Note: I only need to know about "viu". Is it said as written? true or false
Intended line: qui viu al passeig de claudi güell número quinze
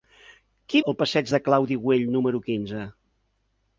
false